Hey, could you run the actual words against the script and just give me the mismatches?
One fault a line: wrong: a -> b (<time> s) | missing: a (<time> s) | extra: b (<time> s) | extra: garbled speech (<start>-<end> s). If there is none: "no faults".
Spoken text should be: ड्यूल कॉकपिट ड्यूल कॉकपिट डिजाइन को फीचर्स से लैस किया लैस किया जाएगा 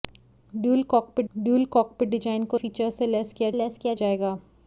no faults